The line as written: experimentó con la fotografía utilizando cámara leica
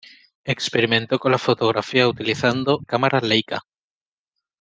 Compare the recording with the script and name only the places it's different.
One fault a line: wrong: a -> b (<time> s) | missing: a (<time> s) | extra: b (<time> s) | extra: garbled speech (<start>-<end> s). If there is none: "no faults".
no faults